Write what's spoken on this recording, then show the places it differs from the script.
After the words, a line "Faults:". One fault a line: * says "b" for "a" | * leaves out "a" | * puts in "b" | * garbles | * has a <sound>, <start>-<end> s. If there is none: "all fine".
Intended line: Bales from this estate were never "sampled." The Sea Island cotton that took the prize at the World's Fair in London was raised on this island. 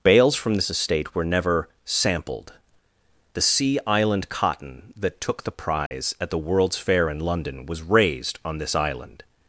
Bales from this estate were never "sampled." The Sea Island cotton that took the prize at the World's Fair in London was raised on this island.
Faults:
* has a dropout, 5.9-5.9 s